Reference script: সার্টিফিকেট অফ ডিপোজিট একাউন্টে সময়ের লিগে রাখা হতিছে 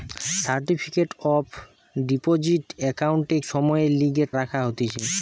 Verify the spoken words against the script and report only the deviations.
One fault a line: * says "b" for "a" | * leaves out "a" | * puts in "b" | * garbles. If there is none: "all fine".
all fine